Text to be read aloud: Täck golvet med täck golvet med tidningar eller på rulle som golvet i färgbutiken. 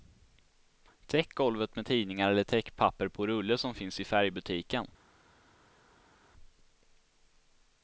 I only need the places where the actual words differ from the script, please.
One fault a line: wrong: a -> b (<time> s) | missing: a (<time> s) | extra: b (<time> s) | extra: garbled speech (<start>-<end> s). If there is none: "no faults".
missing: täck golvet med (1.9 s)
extra: täckpapper (2.4 s)
wrong: golvet -> finns (3.7 s)